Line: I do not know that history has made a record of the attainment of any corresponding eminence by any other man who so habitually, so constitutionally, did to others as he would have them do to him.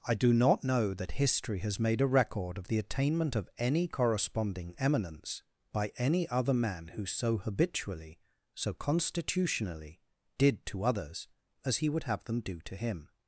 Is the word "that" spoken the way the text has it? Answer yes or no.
yes